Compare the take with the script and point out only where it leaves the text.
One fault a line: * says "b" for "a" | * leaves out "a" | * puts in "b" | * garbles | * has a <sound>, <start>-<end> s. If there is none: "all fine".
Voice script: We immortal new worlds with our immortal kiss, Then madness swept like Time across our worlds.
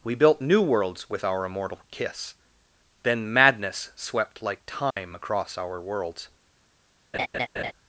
* says "built" for "immortal"
* has a dropout, 4.9-5.0 s
* has a laugh, 7.1-7.7 s